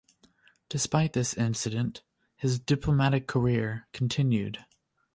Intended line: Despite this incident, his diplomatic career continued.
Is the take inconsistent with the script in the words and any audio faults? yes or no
no